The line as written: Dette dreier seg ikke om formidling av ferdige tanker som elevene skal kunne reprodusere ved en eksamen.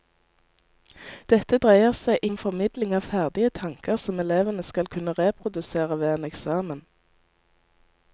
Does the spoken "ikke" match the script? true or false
false